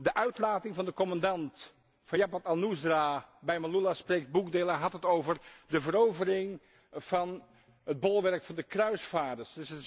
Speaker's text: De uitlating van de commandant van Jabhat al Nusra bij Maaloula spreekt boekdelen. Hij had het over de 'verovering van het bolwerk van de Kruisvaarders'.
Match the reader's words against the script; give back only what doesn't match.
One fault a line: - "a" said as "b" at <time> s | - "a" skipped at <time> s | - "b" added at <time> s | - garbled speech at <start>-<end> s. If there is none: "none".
none